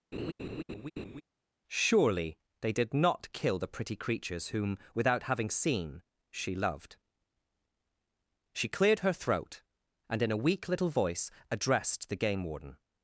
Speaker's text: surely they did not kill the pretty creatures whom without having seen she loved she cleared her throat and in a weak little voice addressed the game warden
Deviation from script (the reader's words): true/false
false